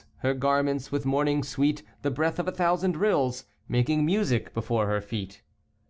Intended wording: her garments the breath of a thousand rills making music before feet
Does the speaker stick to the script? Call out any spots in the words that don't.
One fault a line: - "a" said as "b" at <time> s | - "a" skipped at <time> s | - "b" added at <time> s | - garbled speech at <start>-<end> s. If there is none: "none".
- "with morning sweet" added at 0.9 s
- "her" added at 4.9 s